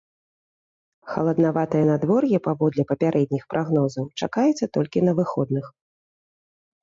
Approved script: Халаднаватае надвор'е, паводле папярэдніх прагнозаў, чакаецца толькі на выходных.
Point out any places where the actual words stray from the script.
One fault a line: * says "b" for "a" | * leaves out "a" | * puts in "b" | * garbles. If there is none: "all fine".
all fine